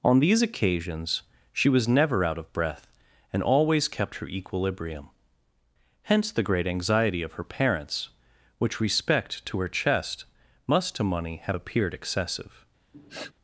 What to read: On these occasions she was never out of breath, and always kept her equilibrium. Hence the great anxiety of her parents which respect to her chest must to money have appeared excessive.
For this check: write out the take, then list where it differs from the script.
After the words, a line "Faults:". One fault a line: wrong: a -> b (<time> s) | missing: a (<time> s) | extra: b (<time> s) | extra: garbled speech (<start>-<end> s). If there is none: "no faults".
On these occasions she was never out of breath, and always kept her equilibrium. Hence the great anxiety of her parents which respect to her chest must to money have appeared excessive.
Faults:
no faults